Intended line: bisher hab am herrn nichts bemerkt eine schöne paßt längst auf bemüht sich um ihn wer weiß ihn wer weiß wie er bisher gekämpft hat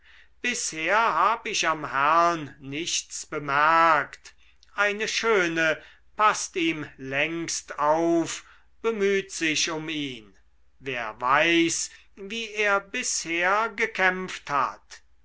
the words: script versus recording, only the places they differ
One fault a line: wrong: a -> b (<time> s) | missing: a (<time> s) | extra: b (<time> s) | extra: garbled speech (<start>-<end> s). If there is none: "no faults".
extra: ich (1.4 s)
extra: ihm (6.5 s)
missing: ihn wer weiß (11.9 s)